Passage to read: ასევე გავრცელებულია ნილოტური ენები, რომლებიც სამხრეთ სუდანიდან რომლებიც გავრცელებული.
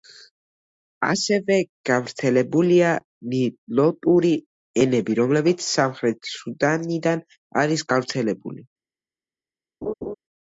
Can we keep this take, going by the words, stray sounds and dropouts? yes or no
no